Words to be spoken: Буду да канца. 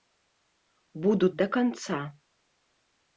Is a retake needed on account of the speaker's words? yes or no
no